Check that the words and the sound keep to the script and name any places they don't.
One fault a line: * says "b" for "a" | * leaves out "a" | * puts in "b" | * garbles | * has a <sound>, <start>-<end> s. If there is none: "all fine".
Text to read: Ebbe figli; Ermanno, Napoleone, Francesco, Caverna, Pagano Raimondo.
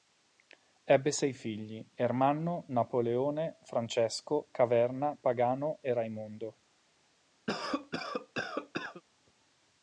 * puts in "sei"
* puts in "e"
* has a cough, 7.5-9.0 s